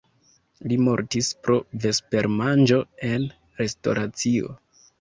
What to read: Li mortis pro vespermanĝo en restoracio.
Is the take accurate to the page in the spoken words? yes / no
yes